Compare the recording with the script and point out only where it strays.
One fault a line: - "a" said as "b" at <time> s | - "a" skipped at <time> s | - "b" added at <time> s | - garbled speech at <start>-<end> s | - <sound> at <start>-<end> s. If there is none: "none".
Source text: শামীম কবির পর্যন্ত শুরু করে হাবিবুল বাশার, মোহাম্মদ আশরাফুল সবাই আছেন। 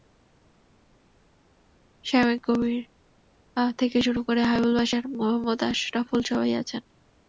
- "পর্যন্ত" said as "থেকে" at 3.8 s